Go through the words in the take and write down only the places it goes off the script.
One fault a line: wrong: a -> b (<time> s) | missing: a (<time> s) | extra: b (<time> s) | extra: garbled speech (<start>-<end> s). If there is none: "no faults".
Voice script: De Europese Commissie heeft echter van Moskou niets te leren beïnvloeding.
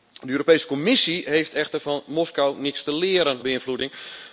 no faults